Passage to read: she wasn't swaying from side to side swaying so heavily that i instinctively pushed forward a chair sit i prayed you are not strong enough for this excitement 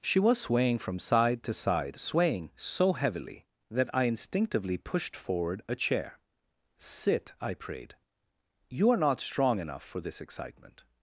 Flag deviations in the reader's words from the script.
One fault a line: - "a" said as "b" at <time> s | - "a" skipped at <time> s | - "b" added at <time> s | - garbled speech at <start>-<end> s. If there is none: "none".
- "wasn't" said as "was" at 0.2 s